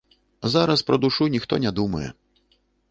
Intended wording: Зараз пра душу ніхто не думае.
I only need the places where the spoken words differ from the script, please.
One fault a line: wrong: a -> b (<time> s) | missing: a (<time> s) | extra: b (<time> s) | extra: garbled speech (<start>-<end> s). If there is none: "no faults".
no faults